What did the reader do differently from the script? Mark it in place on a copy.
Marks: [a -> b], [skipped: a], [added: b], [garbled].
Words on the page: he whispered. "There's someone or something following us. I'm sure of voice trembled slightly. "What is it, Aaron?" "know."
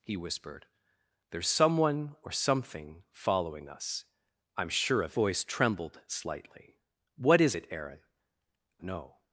he whispered. "There's someone or something following us. I'm sure of voice trembled slightly. "What is it, Aaron?" "know."